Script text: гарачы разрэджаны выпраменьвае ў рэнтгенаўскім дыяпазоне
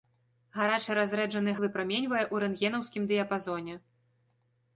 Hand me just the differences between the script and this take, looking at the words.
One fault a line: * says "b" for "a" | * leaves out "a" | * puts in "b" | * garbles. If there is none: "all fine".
all fine